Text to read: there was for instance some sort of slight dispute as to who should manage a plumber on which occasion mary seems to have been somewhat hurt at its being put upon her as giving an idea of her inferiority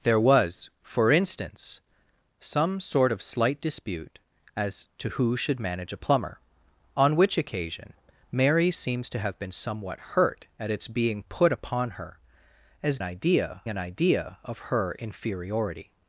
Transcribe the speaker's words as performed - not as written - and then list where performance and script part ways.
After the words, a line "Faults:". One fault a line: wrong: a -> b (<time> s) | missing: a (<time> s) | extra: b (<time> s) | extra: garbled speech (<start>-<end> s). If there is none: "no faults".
there was for instance some sort of slight dispute as to who should manage a plumber on which occasion mary seems to have been somewhat hurt at its being put upon her as idea an idea of her inferiority
Faults:
wrong: giving -> idea (13.0 s)